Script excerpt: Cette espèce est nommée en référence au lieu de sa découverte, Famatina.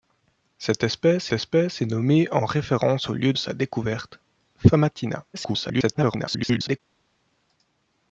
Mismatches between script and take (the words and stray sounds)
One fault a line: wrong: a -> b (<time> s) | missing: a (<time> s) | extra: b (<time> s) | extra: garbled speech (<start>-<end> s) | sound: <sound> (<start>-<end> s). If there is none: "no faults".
extra: espèce (1.3 s)
missing: de (3.3 s)
extra: garbled speech (5.3-6.8 s)